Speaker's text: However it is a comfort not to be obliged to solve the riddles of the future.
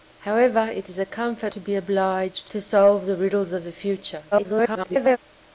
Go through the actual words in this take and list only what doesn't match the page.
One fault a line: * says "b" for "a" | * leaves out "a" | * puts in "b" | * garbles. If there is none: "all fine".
* leaves out "not"
* garbles